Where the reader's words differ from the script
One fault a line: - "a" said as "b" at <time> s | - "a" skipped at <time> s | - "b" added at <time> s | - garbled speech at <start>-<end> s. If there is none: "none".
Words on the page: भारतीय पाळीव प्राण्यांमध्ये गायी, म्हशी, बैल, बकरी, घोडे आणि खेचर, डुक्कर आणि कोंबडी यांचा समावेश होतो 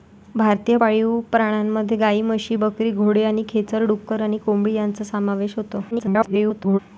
- "बैल" skipped at 2.6 s
- garbled speech at 5.9-6.8 s